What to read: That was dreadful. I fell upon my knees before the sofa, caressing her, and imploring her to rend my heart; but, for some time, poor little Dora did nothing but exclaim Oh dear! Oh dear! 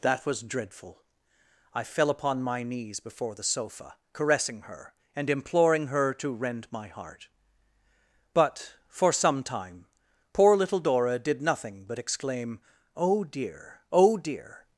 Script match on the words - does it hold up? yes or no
yes